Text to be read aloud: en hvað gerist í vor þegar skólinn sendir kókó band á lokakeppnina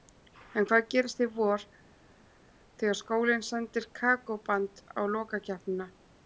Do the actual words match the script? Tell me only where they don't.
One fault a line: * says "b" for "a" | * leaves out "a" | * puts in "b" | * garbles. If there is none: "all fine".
all fine